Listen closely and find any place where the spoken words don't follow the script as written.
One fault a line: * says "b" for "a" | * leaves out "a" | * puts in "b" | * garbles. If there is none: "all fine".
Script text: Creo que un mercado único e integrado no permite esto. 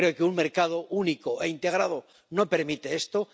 all fine